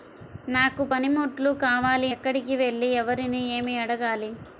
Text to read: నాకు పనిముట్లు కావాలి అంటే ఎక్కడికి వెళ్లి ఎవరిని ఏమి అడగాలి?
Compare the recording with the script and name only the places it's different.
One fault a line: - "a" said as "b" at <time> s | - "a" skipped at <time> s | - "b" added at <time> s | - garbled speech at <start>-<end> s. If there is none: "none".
- "అంటే" skipped at 2.1 s